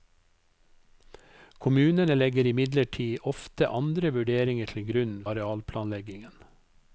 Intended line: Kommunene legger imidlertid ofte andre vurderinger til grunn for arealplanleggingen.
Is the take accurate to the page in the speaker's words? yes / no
no